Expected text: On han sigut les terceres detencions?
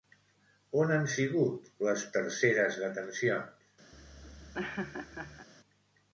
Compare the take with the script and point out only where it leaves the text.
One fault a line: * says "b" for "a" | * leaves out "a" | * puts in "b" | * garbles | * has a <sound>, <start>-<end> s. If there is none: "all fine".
* has a laugh, 3.9-5.5 s